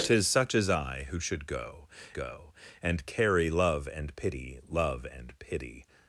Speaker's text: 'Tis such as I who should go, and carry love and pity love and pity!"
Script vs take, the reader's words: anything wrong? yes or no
yes